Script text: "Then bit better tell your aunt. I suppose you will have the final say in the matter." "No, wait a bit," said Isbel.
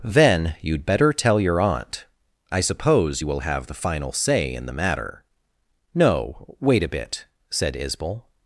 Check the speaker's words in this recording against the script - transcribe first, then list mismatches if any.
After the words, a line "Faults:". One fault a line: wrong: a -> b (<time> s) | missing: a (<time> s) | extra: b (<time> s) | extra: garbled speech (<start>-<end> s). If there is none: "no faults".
"Then you'd better tell your aunt. I suppose you will have the final say in the matter." "No, wait a bit," said Isbel.
Faults:
wrong: bit -> you'd (0.6 s)